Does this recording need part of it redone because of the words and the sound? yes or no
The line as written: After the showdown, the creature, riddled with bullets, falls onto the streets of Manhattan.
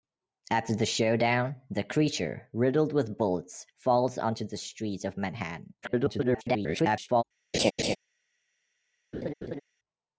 yes